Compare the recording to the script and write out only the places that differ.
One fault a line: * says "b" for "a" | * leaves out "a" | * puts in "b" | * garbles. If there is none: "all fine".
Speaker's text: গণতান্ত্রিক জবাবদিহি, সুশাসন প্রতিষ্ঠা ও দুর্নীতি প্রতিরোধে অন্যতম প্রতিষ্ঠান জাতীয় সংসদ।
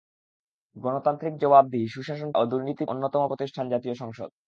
* leaves out "প্রতিষ্ঠা"
* leaves out "প্রতিরোধে"